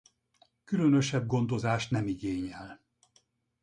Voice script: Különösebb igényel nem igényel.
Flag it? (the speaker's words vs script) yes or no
yes